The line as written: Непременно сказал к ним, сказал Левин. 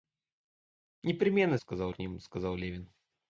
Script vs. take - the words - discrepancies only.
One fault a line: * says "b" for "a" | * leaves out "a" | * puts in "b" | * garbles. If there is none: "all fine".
all fine